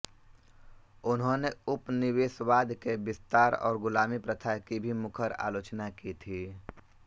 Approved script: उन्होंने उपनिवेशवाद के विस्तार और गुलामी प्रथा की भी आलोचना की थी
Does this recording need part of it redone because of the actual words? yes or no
yes